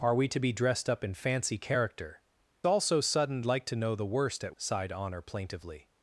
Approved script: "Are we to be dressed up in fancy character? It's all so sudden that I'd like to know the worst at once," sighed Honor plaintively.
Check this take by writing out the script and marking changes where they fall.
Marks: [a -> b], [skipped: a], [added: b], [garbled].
"Are we to be dressed up in fancy character? [skipped: It's] all so sudden [skipped: that I'd] like to know the worst at [skipped: once,"] sighed Honor plaintively.